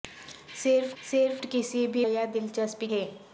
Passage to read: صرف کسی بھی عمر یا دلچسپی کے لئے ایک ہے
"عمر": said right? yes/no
no